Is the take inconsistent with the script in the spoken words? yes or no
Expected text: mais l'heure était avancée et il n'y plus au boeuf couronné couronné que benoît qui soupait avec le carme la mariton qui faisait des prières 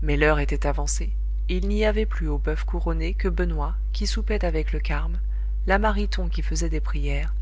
yes